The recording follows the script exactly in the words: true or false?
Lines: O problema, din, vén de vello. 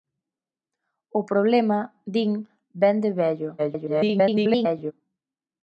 false